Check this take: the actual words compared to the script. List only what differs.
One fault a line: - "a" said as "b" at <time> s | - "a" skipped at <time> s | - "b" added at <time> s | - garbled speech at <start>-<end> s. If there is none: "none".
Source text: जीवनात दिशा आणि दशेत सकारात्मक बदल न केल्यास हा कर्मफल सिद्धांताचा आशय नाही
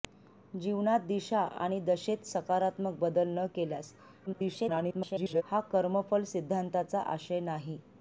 - garbled speech at 4.3-5.4 s